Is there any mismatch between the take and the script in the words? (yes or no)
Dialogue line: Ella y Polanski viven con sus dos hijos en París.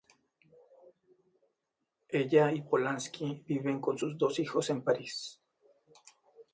no